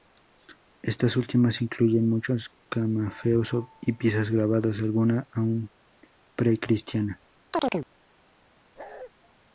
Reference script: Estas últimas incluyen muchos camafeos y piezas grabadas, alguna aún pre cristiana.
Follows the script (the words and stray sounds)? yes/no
no